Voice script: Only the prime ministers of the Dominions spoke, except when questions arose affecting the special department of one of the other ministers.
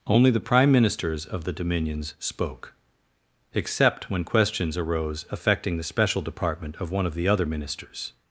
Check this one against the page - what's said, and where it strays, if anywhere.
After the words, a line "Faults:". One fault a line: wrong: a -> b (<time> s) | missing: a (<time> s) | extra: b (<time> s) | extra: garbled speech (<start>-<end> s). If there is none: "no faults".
Only the prime ministers of the Dominions spoke, except when questions arose affecting the special department of one of the other ministers.
Faults:
no faults